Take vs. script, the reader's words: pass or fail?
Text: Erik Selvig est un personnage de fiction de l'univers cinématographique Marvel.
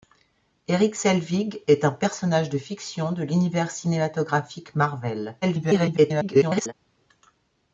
fail